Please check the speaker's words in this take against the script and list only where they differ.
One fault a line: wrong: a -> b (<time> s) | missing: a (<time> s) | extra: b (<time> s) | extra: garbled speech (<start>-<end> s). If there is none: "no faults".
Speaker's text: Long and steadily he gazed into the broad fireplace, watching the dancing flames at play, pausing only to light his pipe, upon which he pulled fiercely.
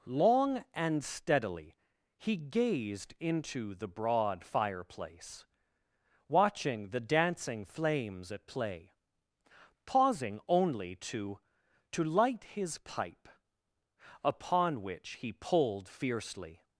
extra: to (11.9 s)